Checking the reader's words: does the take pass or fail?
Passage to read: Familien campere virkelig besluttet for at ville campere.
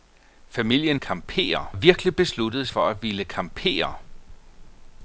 pass